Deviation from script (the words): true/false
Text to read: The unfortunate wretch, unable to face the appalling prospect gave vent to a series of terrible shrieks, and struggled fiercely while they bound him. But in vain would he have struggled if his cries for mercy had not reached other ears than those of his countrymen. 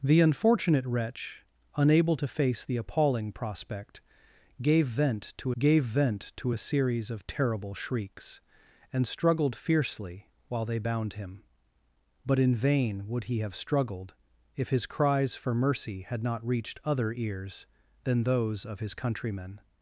true